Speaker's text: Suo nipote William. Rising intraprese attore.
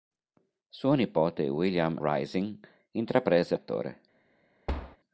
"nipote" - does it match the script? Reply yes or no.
yes